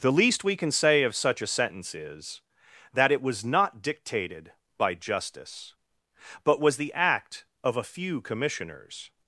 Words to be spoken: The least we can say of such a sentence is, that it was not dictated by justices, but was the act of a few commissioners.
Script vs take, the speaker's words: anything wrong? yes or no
yes